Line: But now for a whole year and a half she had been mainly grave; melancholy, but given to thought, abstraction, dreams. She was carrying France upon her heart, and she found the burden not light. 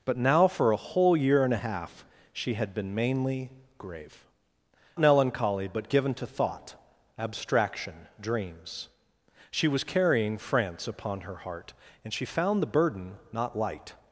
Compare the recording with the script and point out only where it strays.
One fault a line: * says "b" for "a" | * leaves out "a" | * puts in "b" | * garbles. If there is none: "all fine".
all fine